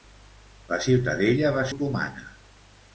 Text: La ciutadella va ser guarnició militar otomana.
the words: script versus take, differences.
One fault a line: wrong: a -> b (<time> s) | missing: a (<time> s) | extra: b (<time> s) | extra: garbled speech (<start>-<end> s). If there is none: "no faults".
missing: ser guarnició militar (1.6 s)